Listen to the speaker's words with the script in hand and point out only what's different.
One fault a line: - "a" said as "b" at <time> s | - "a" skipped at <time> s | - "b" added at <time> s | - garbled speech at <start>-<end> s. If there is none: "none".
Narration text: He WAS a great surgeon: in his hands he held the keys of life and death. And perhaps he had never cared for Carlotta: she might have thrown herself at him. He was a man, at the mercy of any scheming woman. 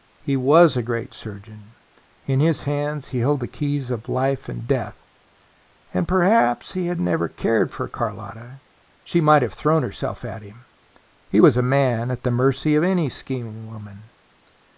none